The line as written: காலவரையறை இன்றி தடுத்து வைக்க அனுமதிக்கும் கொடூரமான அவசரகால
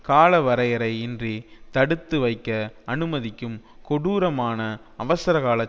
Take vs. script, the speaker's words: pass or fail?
pass